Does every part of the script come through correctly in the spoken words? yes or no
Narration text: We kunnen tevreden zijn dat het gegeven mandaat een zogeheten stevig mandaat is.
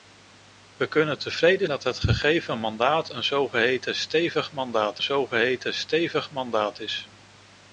no